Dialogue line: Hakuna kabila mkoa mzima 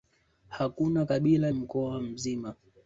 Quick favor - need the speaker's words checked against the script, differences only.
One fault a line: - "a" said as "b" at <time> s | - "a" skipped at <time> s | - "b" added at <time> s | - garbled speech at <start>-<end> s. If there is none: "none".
none